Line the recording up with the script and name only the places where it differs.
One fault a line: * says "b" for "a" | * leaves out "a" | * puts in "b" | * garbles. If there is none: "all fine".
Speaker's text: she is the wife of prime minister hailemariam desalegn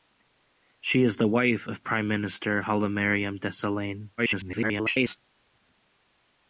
* garbles